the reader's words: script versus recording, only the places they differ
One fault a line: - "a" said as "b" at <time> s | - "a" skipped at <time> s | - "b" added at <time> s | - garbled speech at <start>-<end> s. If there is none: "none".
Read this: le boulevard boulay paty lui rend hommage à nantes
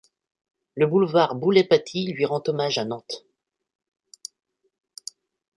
none